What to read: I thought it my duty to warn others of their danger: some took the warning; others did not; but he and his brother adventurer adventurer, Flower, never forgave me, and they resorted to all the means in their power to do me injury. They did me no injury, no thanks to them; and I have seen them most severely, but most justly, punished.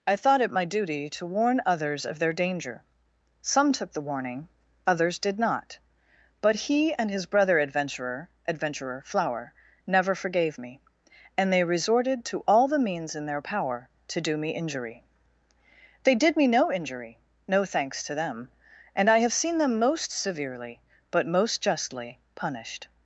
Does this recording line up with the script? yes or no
yes